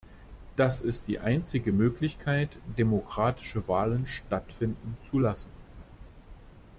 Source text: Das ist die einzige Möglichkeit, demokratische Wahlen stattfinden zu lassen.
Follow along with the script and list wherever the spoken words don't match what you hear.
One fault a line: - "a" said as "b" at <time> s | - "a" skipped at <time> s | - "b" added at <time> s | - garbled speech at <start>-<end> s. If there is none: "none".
none